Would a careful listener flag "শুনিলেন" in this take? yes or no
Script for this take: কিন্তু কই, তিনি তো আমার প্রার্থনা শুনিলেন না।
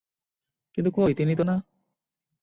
yes